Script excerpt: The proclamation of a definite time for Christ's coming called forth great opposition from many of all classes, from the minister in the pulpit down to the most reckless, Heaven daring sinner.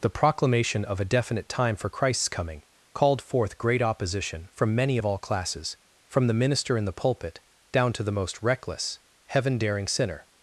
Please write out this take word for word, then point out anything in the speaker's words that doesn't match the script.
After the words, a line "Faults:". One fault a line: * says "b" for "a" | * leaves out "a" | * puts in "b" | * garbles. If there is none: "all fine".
The proclamation of a definite time for Christ's coming called forth great opposition from many of all classes, from the minister in the pulpit down to the most reckless, Heaven daring sinner.
Faults:
all fine